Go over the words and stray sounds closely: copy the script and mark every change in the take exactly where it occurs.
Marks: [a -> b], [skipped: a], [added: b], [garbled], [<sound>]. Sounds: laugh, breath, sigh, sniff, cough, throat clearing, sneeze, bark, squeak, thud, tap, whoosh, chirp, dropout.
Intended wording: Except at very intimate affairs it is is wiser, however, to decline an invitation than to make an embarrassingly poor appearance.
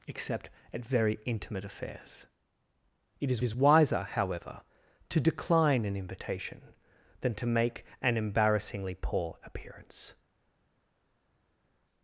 Except at very intimate affairs it is is wiser, however, to decline an invitation than to make an embarrassingly poor appearance.